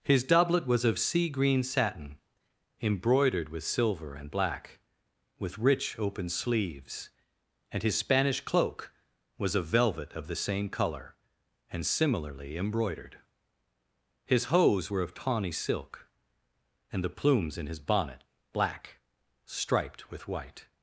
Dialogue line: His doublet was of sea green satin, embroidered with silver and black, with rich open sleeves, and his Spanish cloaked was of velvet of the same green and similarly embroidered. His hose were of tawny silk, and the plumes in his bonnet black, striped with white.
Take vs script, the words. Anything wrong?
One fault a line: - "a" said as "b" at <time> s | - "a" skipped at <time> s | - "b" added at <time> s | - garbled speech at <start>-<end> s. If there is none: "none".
- "cloaked" said as "cloak" at 8.4 s
- "green" said as "colour" at 10.7 s